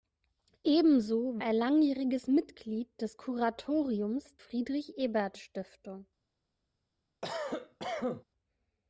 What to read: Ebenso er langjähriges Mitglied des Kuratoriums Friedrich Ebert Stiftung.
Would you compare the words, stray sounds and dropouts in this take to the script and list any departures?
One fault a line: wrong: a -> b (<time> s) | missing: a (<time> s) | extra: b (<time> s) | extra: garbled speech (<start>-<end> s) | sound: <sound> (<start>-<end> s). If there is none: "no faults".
sound: cough (7.2-8.2 s)